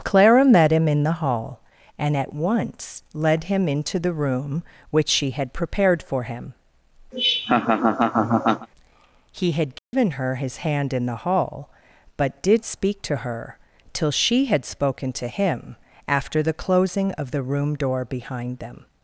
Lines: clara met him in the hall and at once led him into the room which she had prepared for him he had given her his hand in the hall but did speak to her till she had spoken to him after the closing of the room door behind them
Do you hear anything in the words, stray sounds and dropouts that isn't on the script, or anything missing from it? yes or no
yes